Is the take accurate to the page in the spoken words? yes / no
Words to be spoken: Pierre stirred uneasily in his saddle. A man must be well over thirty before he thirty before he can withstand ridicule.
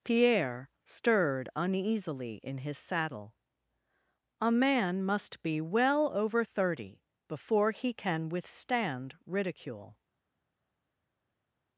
no